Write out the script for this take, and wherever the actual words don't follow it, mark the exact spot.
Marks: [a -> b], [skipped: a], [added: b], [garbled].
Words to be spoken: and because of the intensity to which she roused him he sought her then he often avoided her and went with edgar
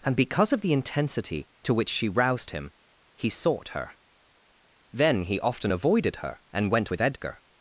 and because of the intensity to which she roused him he sought her then he often avoided her and went with edgar